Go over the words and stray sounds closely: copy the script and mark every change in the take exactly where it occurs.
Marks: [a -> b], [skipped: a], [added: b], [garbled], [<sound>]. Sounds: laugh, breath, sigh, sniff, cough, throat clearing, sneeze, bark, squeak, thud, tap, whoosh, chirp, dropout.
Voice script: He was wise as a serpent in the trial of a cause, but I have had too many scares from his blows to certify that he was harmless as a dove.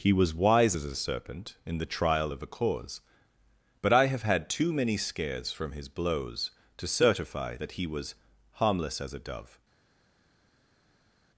He was wise as a serpent in the trial of a cause, but I have had too many scares from his blows to certify that he was harmless as a dove.